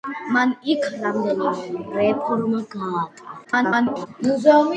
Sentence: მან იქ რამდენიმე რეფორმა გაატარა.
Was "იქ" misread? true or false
false